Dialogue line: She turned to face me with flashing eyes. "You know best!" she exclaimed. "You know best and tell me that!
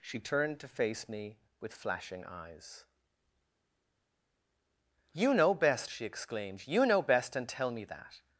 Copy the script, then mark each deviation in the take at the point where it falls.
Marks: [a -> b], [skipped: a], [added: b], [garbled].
She turned to face me with flashing eyes. "You know best!" she exclaimed. "You know best and tell me that!